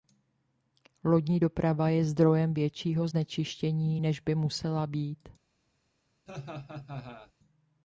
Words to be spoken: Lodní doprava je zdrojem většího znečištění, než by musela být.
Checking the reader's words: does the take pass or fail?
pass